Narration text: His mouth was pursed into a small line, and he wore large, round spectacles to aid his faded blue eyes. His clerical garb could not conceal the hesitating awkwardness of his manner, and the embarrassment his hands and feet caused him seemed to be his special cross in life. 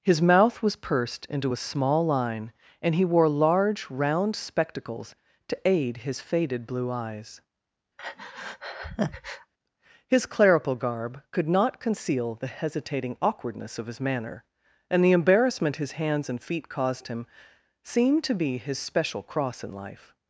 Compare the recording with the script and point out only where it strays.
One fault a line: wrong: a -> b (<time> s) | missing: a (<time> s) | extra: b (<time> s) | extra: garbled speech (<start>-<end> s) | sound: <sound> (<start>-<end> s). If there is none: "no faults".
sound: breath (8.0-9.5 s)